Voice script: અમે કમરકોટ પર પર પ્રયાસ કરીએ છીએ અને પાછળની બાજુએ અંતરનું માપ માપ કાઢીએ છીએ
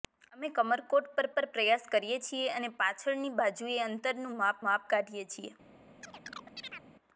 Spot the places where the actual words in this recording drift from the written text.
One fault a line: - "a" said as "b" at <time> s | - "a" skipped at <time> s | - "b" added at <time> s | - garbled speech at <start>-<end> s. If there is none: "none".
none